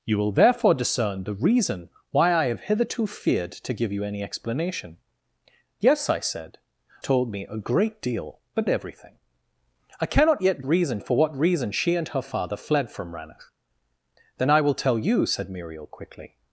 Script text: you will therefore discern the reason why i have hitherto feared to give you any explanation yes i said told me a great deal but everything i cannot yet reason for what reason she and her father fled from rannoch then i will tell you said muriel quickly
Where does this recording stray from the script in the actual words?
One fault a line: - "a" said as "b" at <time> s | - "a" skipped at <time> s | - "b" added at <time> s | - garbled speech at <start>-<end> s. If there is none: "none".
none